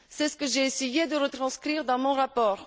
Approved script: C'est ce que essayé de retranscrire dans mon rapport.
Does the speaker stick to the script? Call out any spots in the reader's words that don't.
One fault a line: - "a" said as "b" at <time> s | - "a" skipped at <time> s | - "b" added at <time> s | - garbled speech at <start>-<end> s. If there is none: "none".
- "j'ai" added at 0.5 s